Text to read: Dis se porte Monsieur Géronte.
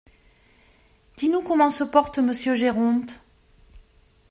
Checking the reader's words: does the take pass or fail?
fail